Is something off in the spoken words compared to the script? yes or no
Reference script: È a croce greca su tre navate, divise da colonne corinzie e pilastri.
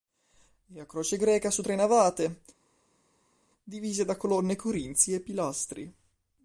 no